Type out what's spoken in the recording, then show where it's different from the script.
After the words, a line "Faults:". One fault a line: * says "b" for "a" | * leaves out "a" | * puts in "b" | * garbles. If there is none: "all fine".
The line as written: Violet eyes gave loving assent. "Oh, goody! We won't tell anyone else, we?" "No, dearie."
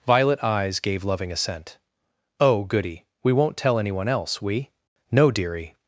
Violet eyes gave loving assent. "Oh, goody! We won't tell anyone else, we?" "No, dearie."
Faults:
all fine